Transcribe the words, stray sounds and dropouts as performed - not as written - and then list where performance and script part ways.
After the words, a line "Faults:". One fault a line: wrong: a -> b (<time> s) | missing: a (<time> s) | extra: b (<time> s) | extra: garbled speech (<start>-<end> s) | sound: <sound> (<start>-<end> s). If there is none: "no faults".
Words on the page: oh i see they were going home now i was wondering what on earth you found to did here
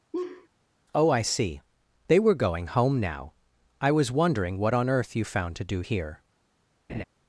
oh i see they were going home now i was wondering what on earth you found to do here
Faults:
sound: laugh (0.1-0.5 s)
wrong: did -> do (5.6 s)
sound: laugh (6.9-7.0 s)